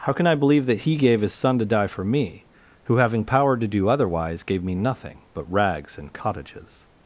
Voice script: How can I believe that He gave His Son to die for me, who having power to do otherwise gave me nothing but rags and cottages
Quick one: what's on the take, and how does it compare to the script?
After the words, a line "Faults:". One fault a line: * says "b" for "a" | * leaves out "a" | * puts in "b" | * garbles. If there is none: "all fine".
How can I believe that He gave His Son to die for me, who having power to do otherwise gave me nothing but rags and cottages
Faults:
all fine